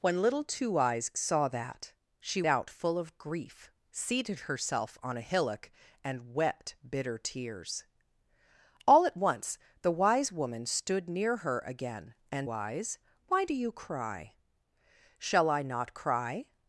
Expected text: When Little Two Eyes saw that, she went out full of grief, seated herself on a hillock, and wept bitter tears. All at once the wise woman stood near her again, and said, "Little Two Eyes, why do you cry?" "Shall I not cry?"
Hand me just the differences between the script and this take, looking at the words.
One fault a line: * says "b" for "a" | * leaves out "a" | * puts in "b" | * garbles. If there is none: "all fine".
* leaves out "went"
* leaves out "said Little Two"